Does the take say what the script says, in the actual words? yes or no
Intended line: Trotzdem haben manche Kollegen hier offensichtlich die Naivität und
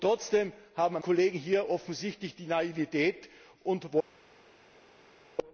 no